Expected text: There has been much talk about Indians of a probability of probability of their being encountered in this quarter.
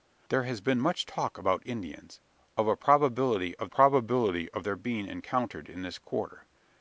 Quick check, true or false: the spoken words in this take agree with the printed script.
true